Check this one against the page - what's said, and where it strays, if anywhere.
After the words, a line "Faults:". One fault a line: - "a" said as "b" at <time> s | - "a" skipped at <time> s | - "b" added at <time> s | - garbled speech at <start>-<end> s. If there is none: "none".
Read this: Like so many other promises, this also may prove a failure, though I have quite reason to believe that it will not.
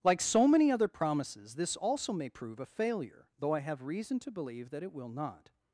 Like so many other promises, this also may prove a failure, though I have reason to believe that it will not.
Faults:
- "quite" skipped at 3.8 s